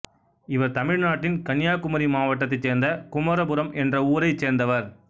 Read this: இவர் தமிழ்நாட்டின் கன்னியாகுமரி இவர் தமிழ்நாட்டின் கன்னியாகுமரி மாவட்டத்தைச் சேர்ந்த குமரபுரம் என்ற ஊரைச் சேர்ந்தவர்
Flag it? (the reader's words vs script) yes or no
yes